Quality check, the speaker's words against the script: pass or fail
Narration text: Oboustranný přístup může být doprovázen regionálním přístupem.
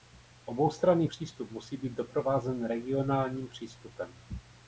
fail